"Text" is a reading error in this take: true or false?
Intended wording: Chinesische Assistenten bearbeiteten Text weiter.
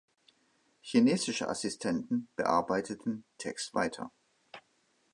false